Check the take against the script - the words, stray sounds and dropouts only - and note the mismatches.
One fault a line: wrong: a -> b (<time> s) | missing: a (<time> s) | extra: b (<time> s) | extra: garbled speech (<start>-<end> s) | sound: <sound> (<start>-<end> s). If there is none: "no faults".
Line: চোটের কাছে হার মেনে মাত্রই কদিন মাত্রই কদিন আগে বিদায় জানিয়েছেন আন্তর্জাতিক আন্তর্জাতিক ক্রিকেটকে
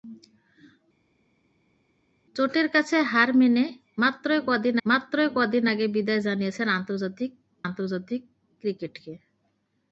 no faults